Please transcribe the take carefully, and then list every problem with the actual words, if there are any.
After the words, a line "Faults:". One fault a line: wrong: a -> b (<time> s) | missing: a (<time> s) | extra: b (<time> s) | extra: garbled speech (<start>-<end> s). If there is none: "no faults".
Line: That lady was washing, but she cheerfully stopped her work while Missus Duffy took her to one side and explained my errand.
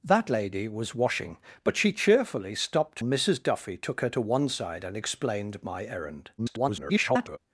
That lady was washing, but she cheerfully stopped Missus Duffy took her to one side and explained my errand. [garbled]
Faults:
missing: her work while (3.0 s)
extra: garbled speech (6.4-7.4 s)